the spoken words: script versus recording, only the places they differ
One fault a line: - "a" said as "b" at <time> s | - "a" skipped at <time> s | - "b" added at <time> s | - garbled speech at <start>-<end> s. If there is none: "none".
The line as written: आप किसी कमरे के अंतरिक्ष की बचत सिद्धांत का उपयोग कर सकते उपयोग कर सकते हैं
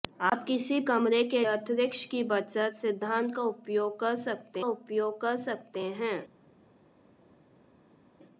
none